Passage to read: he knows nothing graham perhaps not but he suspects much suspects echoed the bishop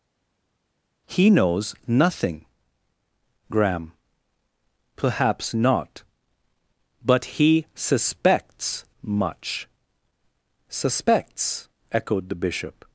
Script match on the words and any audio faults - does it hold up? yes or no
yes